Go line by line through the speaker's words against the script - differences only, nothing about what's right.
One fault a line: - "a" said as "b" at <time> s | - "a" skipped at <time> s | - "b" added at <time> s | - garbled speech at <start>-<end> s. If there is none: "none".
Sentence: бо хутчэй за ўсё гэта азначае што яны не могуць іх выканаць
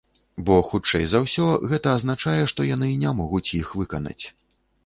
none